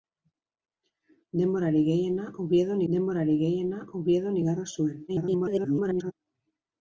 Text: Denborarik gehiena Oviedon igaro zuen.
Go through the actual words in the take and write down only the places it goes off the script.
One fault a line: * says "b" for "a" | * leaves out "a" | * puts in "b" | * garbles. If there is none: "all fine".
* puts in "denborarik gehiena Oviedon"
* garbles